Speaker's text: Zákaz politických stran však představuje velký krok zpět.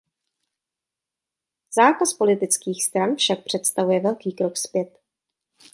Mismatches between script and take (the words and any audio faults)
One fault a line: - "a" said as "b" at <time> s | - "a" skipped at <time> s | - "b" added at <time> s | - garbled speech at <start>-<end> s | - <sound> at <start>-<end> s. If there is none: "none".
none